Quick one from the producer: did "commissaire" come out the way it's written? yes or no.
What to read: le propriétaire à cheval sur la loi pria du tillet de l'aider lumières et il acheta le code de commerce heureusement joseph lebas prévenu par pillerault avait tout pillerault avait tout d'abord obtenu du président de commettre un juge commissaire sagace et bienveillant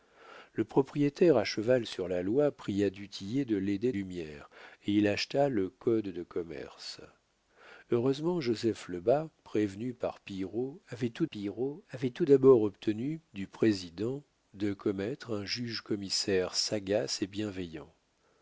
yes